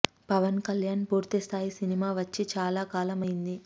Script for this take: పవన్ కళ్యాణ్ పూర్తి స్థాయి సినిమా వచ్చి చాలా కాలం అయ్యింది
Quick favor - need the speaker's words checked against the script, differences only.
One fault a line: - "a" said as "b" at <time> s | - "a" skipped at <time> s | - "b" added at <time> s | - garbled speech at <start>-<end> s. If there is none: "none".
none